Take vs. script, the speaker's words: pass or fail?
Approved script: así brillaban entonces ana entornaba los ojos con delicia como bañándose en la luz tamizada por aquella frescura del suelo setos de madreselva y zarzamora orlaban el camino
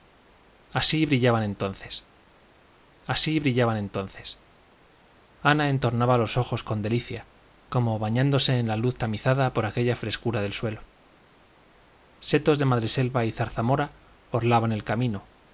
fail